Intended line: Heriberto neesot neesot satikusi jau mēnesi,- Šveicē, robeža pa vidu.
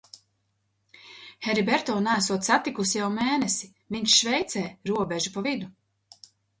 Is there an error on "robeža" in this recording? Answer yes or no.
no